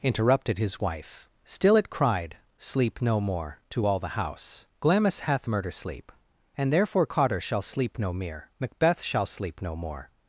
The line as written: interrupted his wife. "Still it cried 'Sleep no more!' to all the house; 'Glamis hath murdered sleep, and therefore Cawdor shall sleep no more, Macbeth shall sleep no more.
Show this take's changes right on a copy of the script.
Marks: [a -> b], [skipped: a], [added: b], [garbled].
interrupted his wife. "Still it cried 'Sleep no more!' to all the house; 'Glamis hath [murdered -> murder] sleep, and therefore Cawdor shall sleep no [more, -> mere] Macbeth shall sleep no more.